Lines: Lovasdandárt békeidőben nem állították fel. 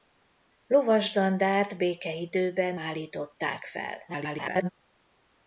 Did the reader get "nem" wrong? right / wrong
wrong